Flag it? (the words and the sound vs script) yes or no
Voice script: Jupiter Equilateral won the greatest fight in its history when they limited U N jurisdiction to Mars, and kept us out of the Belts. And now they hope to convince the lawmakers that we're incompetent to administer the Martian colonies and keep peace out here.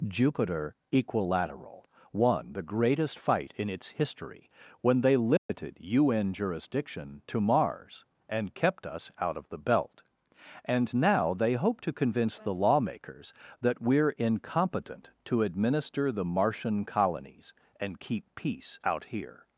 yes